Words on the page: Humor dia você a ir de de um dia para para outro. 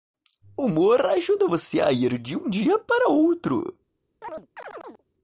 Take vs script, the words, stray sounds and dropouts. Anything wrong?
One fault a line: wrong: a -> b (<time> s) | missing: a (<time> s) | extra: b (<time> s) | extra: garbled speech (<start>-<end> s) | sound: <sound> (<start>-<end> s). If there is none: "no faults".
wrong: dia -> ajuda (1.1 s)
missing: de (2.4 s)
missing: para (3.1 s)
sound: chirp (4.2-5.0 s)